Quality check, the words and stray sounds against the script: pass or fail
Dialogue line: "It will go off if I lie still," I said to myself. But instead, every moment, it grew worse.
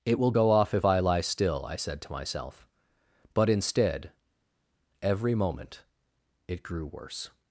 pass